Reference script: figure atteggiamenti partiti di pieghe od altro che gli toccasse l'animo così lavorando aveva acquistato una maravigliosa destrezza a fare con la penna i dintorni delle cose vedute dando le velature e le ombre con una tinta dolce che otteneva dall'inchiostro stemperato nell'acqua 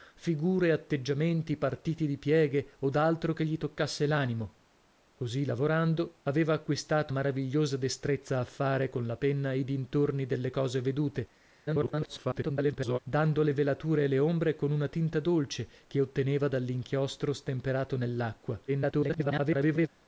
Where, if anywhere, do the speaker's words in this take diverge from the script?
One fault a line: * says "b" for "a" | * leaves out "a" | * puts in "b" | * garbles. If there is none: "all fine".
* leaves out "una"
* garbles
* garbles